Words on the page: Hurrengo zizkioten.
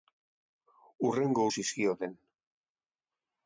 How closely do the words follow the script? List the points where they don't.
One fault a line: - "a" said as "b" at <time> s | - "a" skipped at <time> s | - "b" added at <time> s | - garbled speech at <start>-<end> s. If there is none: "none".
none